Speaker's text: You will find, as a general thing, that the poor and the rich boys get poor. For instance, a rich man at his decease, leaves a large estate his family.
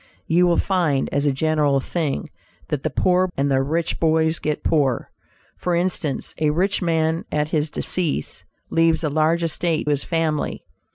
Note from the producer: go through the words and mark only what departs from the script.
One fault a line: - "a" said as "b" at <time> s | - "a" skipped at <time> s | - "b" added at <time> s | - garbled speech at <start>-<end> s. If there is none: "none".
none